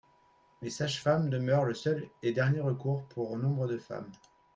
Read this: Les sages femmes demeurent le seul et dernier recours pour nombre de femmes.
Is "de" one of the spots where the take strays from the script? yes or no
no